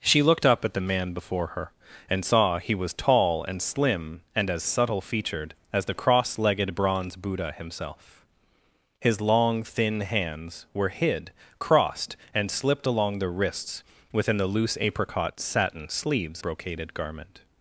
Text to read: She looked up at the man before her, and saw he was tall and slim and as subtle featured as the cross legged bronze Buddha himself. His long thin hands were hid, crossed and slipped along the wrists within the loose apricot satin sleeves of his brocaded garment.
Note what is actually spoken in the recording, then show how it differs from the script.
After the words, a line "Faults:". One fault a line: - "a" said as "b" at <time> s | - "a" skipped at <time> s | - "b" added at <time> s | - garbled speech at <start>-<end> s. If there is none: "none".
She looked up at the man before her, and saw he was tall and slim and as subtle featured as the cross legged bronze Buddha himself. His long thin hands were hid, crossed and slipped along the wrists within the loose apricot satin sleeves brocaded garment.
Faults:
- "of his" skipped at 16.4 s